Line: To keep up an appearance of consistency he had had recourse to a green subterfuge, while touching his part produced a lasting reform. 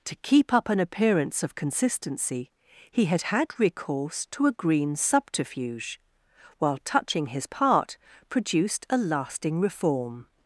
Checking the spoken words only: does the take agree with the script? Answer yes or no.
yes